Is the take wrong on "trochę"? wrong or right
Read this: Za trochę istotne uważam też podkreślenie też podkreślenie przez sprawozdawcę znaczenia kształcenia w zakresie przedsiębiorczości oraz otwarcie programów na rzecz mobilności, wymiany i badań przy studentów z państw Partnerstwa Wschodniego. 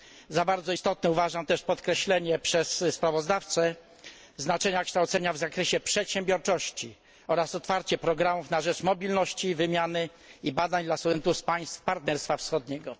wrong